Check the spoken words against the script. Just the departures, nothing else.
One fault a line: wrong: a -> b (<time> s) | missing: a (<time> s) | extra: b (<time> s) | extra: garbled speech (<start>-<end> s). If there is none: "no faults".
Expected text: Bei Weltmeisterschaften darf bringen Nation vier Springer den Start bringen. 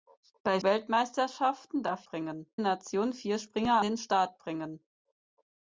no faults